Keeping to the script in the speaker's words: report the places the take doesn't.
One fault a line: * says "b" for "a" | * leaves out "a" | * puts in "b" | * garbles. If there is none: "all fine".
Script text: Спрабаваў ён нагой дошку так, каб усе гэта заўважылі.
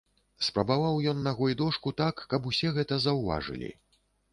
all fine